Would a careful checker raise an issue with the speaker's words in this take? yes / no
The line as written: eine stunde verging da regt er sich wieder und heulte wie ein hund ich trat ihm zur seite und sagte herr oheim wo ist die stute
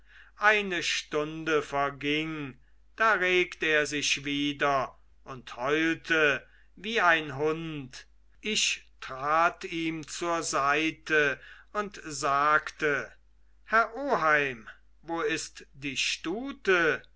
no